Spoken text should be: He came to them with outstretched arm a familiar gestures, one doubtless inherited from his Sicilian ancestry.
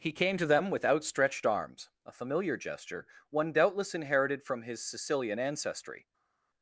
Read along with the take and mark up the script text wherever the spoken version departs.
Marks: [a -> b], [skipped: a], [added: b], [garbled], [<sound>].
He came to them with outstretched [arm -> arms] a familiar [gestures, -> gesture] one doubtless inherited from his Sicilian ancestry.